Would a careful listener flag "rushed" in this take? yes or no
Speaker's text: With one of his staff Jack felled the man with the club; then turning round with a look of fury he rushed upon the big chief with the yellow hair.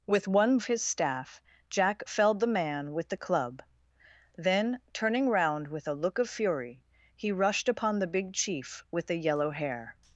no